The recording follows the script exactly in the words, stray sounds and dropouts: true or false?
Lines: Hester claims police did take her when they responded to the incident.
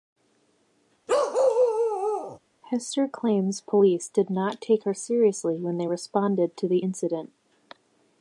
false